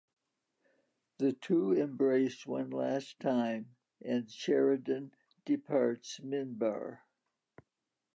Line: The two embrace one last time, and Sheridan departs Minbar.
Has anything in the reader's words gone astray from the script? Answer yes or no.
no